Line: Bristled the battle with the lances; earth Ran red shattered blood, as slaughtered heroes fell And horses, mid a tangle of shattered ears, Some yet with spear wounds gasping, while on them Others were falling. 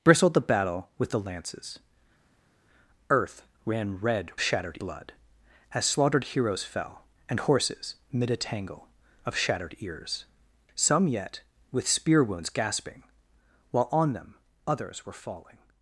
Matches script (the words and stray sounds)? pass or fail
pass